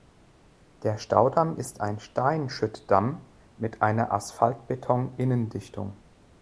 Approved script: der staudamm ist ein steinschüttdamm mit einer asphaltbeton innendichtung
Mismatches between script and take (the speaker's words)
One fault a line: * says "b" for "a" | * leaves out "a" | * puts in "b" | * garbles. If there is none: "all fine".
all fine